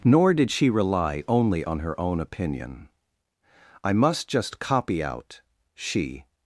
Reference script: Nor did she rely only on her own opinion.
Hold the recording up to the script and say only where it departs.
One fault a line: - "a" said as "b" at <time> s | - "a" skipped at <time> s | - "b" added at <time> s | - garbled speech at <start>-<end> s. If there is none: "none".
- "I must just copy out she" added at 3.8 s